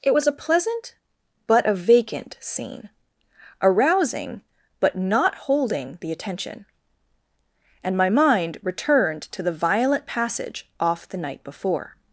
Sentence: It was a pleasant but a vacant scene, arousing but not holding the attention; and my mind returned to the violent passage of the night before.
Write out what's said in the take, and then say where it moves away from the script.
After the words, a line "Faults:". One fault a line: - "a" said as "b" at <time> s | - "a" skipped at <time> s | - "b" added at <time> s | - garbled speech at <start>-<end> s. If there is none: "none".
It was a pleasant but a vacant scene, arousing but not holding the attention; and my mind returned to the violent passage off the night before.
Faults:
- "of" said as "off" at 10.8 s